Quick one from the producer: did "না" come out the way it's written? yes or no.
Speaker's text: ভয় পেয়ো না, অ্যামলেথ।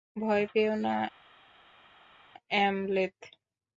yes